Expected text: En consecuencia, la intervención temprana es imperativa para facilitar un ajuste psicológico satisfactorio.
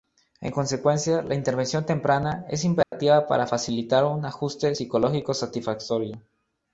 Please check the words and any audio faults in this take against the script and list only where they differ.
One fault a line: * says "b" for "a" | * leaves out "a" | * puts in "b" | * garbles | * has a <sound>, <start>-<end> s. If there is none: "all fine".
* has a dropout, 2.8-2.9 s